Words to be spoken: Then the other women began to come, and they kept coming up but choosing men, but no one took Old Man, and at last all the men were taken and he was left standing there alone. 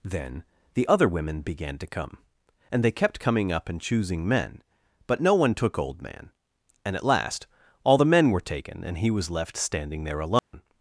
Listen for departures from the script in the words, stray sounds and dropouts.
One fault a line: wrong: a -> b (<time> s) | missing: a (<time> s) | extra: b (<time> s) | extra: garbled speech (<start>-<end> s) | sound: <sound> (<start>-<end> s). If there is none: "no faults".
wrong: but -> and (3.7 s)
sound: dropout (10.4-10.5 s)